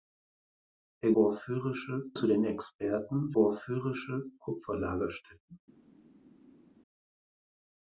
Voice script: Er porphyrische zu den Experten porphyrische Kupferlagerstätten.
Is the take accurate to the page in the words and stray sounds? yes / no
yes